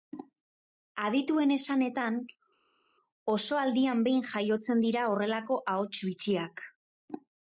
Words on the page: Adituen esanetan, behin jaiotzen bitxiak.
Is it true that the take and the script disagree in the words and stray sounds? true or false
true